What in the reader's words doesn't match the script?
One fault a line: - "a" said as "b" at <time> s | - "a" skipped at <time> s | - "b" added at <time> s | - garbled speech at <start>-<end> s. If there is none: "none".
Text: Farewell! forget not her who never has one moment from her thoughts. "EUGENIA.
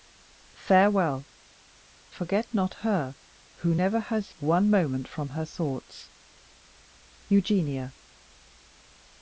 none